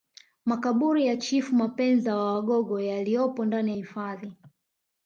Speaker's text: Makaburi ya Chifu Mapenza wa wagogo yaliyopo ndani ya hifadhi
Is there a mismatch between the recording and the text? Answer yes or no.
no